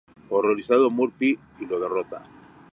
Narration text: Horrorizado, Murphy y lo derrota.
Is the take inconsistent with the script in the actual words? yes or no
no